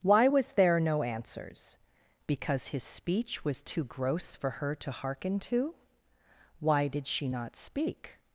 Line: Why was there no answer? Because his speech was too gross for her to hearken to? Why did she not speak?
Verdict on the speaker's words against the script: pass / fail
fail